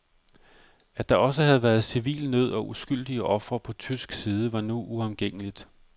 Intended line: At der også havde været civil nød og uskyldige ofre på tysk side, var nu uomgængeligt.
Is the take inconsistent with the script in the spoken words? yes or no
no